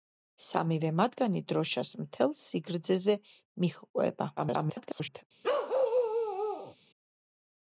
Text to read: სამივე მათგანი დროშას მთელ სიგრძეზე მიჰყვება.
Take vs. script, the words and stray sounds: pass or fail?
fail